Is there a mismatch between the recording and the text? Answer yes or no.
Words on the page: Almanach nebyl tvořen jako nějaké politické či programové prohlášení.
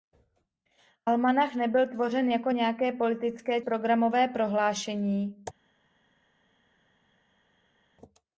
yes